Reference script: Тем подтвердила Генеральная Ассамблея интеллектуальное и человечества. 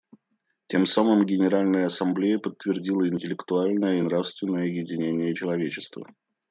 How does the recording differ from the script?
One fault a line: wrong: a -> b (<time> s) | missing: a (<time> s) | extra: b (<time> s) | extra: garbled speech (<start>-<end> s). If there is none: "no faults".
wrong: подтвердила -> самым (0.9 s)
extra: подтвердила (2.4 s)
extra: нравственное единение (4.0 s)